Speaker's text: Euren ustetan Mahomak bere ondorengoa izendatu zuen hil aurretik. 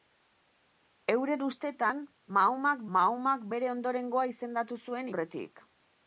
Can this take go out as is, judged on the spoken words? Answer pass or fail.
fail